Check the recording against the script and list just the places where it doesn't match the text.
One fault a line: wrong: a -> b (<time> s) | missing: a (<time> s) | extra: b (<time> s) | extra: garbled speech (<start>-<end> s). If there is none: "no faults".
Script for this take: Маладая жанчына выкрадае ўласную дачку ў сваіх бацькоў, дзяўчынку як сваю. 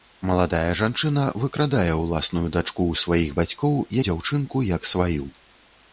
no faults